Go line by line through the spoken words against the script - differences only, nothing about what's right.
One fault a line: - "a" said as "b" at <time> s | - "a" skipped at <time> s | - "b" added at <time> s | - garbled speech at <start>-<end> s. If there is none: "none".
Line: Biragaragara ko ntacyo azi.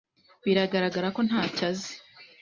none